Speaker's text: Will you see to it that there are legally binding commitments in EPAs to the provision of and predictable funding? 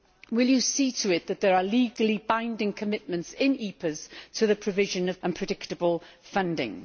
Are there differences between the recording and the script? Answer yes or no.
no